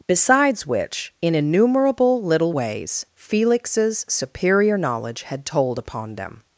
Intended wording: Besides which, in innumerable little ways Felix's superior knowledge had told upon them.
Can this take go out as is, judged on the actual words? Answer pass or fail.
pass